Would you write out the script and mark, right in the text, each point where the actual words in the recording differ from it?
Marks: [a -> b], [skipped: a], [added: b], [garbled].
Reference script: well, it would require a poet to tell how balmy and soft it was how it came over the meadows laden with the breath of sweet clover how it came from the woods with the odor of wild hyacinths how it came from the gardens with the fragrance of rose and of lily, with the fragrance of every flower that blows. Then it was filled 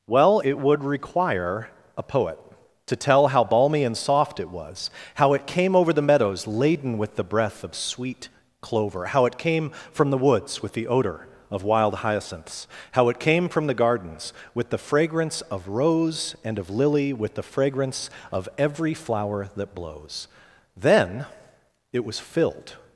well, it would require a poet to tell how balmy and soft it was how it came over the meadows laden with the breath of sweet clover how it came from the woods with the odor of wild hyacinths how it came from the gardens with the fragrance of rose and of lily, with the fragrance of every flower that blows. Then it was filled